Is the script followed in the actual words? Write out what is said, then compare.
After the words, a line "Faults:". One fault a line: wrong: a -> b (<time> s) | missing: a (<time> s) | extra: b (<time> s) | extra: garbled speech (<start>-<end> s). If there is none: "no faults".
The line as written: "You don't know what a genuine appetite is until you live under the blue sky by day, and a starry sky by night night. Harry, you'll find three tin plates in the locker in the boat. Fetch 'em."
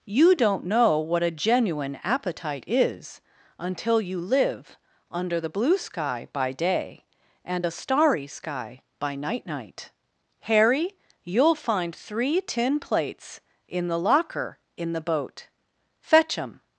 "You don't know what a genuine appetite is until you live under the blue sky by day, and a starry sky by night night. Harry, you'll find three tin plates in the locker in the boat. Fetch 'em."
Faults:
no faults